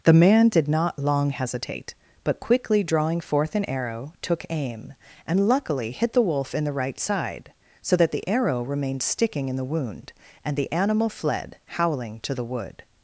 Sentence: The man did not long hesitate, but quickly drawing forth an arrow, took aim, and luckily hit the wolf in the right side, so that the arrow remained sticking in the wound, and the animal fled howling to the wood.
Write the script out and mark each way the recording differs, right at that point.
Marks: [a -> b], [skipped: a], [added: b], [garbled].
The man did not long hesitate, but quickly drawing forth an arrow, took aim, and luckily hit the wolf in the right side, so that the arrow remained sticking in the wound, and the animal fled howling to the wood.